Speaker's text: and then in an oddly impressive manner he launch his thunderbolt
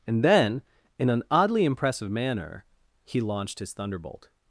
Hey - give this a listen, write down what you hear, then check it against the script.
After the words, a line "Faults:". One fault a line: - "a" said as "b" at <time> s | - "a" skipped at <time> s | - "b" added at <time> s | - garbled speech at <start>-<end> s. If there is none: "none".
and then in an oddly impressive manner he launched his thunderbolt
Faults:
- "launch" said as "launched" at 3.2 s